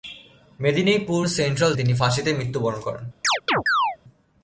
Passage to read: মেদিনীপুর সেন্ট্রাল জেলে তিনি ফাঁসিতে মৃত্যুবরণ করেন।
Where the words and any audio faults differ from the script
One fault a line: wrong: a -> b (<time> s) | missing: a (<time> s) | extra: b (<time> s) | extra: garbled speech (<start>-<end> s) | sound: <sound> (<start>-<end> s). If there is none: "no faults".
missing: জেলে (1.7 s)
sound: chirp (3.2-4.0 s)